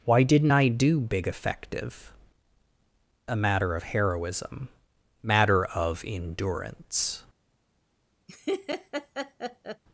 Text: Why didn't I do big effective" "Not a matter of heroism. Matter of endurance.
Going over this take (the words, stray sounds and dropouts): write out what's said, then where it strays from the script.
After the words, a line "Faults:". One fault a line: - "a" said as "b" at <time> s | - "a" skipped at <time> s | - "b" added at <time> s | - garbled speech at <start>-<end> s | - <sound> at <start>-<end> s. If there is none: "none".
Why didn't I do big effective" "A matter of heroism. Matter of endurance.
Faults:
- "Not" skipped at 2.1 s
- laugh at 8.3-9.8 s